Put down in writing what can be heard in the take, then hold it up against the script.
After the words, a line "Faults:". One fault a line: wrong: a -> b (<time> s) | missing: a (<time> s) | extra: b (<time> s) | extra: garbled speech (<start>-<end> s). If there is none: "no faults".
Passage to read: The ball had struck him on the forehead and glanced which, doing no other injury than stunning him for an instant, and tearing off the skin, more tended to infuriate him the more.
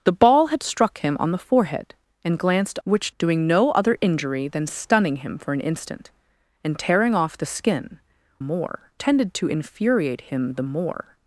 The ball had struck him on the forehead and glanced which, doing no other injury than stunning him for an instant, and tearing off the skin, more tended to infuriate him the more.
Faults:
no faults